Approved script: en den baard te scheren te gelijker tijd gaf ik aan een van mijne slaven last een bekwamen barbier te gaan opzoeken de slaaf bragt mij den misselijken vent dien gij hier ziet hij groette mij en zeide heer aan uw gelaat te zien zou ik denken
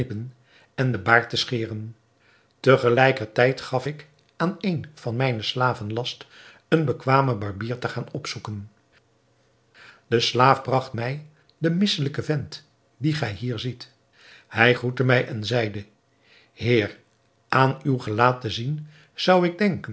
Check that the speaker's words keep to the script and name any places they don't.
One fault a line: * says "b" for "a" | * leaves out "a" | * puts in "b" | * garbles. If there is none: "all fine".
all fine